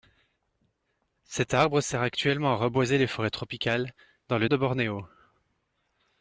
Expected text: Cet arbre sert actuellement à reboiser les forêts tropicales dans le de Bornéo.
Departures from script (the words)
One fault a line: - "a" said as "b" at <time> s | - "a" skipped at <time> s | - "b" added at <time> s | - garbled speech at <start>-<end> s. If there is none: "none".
none